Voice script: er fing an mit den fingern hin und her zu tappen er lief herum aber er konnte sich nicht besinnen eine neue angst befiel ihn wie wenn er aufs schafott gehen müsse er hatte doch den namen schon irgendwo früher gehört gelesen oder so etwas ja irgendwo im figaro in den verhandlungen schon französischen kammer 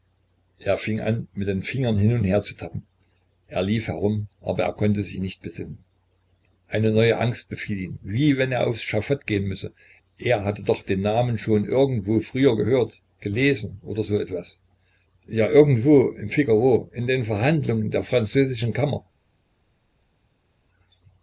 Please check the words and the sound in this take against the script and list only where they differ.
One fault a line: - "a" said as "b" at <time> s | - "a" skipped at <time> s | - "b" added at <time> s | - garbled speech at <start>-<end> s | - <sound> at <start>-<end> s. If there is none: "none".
- "schon" said as "der" at 17.9 s